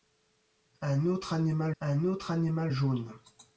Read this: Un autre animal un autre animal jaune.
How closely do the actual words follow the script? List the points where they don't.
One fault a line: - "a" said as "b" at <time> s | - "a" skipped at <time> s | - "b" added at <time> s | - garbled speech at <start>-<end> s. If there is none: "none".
none